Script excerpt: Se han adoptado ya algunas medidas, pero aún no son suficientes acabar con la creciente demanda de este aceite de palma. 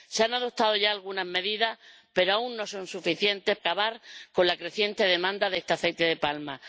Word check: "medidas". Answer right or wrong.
right